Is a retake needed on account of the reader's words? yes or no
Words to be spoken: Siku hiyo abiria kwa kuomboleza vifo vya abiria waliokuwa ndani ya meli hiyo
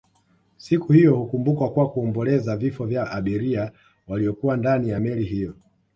yes